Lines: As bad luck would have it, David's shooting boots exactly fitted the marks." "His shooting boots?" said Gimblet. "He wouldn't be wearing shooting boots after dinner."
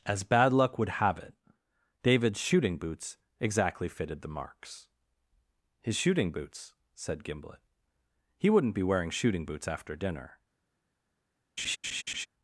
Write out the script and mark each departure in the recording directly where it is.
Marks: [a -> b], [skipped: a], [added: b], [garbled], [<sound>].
As bad luck would have it, David's shooting boots exactly fitted the marks." "His shooting boots?" said Gimblet. "He wouldn't be wearing shooting boots after dinner." [laugh]